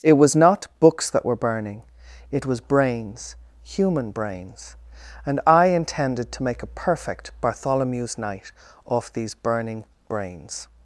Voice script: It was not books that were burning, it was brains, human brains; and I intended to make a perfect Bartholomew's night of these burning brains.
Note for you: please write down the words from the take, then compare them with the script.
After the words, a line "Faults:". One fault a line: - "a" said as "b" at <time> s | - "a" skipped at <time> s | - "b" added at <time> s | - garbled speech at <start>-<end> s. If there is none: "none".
It was not books that were burning, it was brains, human brains; and I intended to make a perfect Bartholomew's night off these burning brains.
Faults:
- "of" said as "off" at 8.8 s